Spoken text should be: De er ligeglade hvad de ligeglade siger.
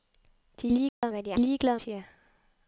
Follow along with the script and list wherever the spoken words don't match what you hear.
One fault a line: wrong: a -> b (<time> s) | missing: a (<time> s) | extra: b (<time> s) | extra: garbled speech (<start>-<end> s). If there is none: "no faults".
no faults